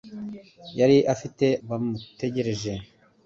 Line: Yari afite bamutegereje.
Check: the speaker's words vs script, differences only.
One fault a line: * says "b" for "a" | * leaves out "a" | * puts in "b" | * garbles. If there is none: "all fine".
all fine